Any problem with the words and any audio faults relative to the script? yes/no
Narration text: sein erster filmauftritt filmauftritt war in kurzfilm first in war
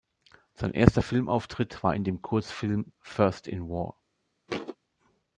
yes